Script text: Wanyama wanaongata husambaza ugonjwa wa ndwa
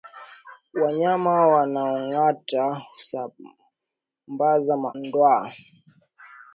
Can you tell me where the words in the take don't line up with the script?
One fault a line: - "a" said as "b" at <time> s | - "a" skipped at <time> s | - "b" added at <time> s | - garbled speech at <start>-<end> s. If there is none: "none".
- "ugonjwa wa" skipped at 4.8 s